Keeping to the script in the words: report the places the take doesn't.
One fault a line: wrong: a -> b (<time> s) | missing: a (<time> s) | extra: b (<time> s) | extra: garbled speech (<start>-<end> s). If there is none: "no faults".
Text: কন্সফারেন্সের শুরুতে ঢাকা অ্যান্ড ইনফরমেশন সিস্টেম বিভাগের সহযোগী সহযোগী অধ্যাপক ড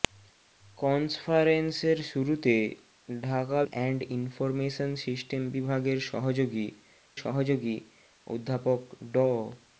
no faults